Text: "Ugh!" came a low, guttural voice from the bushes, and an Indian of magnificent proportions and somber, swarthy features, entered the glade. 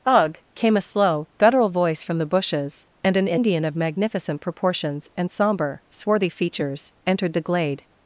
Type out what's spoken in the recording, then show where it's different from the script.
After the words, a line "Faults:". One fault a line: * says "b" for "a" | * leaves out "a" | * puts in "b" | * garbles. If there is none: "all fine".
"Ugh!" came a slow, guttural voice from the bushes, and an Indian of magnificent proportions and somber, swarthy features, entered the glade.
Faults:
* says "slow" for "low"